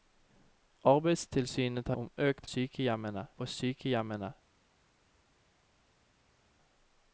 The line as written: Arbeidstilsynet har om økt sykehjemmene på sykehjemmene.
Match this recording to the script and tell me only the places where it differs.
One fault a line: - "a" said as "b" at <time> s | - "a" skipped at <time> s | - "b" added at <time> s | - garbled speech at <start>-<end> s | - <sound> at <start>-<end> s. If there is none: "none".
none